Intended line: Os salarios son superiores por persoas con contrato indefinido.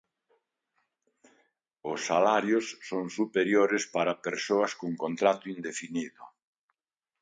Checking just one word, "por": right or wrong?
wrong